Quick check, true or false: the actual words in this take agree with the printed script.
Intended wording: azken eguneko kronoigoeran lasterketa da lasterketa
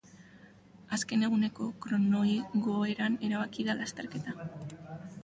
false